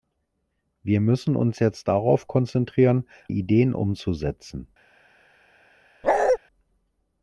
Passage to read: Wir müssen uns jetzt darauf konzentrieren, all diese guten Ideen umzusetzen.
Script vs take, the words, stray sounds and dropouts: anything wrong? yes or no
yes